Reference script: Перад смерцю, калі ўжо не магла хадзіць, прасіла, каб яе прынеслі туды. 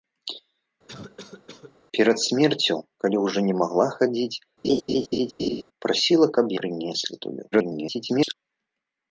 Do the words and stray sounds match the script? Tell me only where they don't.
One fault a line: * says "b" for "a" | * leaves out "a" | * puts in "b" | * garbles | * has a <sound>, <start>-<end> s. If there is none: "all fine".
* has a cough, 0.9-1.8 s
* has a laugh, 4.6-5.6 s
* leaves out "яе"
* garbles